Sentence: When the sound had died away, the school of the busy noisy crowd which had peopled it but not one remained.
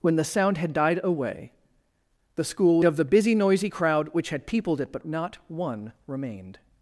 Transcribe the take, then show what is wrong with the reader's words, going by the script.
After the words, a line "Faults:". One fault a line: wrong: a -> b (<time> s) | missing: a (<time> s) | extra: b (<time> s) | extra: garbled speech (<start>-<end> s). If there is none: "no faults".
When the sound had died away, the school of the busy noisy crowd which had peopled it but not one remained.
Faults:
no faults